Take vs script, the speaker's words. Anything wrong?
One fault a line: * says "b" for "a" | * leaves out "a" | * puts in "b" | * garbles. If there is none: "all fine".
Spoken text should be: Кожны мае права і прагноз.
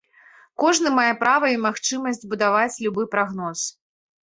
* puts in "магчымасць будаваць любы"